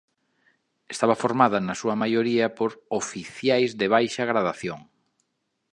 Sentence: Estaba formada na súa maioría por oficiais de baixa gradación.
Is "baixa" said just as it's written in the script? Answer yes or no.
yes